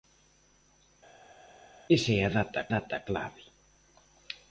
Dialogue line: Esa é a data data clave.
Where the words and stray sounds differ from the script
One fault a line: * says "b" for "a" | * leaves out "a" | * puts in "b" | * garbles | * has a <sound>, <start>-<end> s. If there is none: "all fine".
all fine